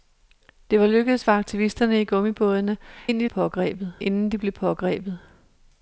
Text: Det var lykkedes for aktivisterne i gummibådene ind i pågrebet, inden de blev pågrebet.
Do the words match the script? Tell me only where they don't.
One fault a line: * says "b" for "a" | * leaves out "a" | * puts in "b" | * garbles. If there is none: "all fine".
all fine